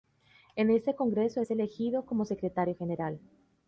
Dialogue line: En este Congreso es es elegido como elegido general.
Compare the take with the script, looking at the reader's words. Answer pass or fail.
fail